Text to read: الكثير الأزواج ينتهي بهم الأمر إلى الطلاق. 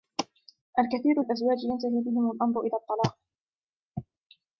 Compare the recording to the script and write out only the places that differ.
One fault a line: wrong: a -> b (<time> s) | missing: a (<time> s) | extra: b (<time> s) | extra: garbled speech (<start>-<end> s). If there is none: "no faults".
no faults